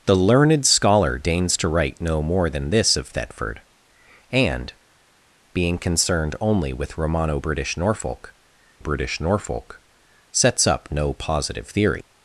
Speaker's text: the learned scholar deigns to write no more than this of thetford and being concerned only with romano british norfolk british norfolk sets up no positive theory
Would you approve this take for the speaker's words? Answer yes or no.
yes